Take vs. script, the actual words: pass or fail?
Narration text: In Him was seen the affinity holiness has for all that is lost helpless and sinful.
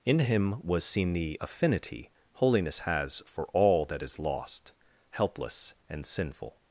pass